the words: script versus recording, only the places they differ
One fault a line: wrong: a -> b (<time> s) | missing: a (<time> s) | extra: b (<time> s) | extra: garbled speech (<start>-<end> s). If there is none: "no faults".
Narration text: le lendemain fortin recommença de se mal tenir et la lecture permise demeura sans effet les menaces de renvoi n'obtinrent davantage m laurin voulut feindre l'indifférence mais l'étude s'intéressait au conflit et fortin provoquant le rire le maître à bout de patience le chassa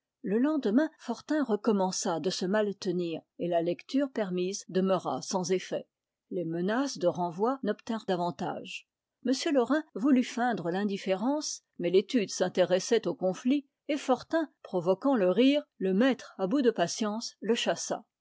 no faults